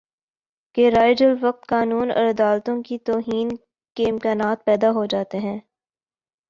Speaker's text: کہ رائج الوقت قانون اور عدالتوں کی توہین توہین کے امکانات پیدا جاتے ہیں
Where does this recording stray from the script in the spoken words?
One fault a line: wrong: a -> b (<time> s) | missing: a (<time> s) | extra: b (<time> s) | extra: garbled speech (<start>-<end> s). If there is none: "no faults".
missing: توہین (3.5 s)
extra: ہو (4.9 s)